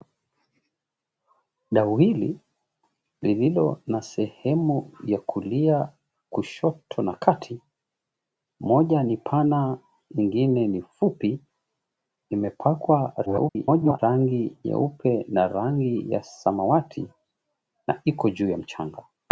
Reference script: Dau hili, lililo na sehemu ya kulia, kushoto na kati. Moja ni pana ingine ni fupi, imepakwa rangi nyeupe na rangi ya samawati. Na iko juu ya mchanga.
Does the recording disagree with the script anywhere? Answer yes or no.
yes